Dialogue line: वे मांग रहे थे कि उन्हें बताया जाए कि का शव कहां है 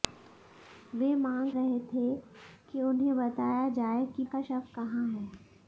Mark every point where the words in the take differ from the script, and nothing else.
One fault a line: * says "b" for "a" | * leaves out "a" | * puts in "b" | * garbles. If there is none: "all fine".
all fine